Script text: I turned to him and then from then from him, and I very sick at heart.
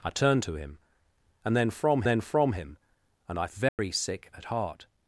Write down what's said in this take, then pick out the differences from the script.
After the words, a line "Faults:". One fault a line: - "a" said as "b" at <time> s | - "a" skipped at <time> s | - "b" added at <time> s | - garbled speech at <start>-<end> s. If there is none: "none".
I turned to him and then from then from him, and I very sick at heart.
Faults:
none